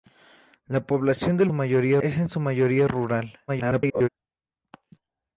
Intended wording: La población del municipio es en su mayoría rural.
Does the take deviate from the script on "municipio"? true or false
true